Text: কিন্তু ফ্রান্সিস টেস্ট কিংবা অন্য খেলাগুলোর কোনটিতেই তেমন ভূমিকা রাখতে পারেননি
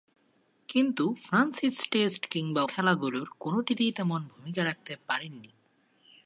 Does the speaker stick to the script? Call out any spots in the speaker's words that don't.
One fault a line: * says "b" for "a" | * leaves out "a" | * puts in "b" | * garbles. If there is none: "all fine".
* leaves out "অন্য"